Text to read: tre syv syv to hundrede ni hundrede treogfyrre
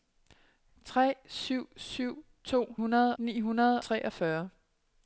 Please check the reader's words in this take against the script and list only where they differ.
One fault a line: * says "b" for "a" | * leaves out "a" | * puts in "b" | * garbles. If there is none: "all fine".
all fine